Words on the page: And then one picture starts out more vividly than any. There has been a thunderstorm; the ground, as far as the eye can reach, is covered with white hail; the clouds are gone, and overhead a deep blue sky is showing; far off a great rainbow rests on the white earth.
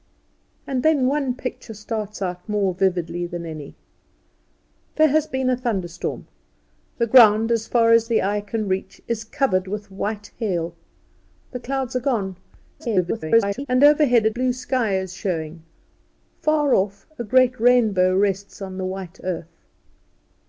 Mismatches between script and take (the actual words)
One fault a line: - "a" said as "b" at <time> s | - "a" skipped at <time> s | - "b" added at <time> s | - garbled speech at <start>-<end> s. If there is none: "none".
- garbled speech at 12.8-13.7 s
- "deep" skipped at 14.3 s